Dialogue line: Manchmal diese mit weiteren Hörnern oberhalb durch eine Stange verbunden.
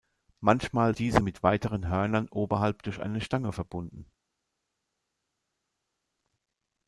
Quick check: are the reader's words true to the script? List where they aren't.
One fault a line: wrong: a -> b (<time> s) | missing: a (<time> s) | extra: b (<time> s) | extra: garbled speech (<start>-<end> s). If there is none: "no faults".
no faults